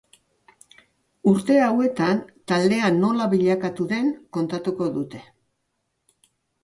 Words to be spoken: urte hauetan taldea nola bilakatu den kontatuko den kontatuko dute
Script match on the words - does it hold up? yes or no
no